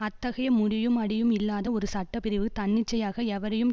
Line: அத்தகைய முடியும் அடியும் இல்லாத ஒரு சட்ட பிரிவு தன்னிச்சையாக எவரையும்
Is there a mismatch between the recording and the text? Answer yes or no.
no